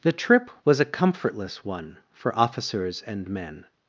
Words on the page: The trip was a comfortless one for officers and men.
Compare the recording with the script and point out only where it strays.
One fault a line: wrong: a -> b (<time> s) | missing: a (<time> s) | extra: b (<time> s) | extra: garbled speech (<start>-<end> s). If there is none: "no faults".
no faults